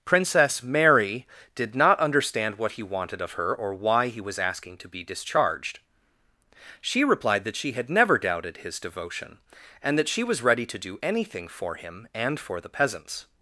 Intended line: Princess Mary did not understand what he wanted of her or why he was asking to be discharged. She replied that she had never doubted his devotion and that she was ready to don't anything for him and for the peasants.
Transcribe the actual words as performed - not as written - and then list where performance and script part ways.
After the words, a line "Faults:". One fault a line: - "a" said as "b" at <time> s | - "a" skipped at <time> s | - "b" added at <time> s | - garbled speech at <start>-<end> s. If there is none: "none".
Princess Mary did not understand what he wanted of her or why he was asking to be discharged. She replied that she had never doubted his devotion and that she was ready to do anything for him and for the peasants.
Faults:
- "don't" said as "do" at 10.8 s